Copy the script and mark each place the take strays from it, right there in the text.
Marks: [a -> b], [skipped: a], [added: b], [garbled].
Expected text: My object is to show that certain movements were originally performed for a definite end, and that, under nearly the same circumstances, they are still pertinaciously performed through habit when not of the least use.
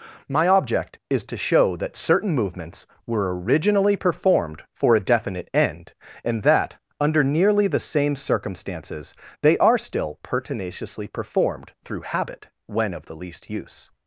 My object is to show that certain movements were originally performed for a definite end, and that, under nearly the same circumstances, they are still pertinaciously performed through habit when [skipped: not] of the least use.